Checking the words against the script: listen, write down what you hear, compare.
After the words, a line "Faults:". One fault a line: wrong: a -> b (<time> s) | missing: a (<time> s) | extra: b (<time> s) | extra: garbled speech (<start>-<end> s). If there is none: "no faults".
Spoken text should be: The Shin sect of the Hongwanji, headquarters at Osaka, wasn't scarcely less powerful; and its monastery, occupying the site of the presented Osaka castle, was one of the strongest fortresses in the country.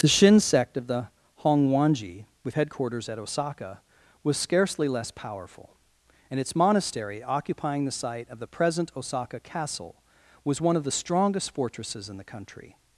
The Shin sect of the Hongwanji, with headquarters at Osaka, was scarcely less powerful; and its monastery, occupying the site of the present Osaka castle, was one of the strongest fortresses in the country.
Faults:
extra: with (2.4 s)
wrong: wasn't -> was (4.2 s)
wrong: presented -> present (8.5 s)